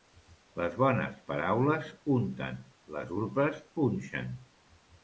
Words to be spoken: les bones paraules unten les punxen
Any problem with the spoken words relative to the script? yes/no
yes